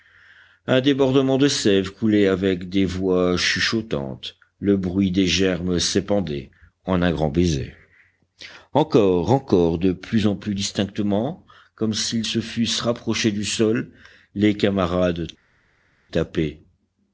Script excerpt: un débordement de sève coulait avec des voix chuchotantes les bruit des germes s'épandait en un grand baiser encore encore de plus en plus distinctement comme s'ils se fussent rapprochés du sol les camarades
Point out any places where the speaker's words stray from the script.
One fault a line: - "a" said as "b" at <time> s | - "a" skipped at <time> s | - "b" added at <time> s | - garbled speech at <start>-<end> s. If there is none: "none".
- "les" said as "le" at 4.6 s